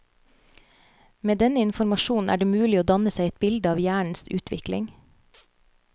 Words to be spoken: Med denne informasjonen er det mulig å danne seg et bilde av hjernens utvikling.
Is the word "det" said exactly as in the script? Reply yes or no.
yes